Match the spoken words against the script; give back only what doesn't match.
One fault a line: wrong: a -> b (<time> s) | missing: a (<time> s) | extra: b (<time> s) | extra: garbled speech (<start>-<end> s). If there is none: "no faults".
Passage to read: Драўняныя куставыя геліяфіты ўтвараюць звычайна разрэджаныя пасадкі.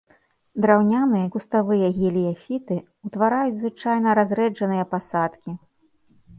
no faults